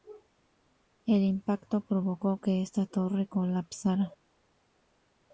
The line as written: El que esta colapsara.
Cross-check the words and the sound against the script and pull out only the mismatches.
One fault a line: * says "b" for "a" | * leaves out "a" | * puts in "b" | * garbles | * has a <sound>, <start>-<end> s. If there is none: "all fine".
* puts in "impacto provocó"
* puts in "torre"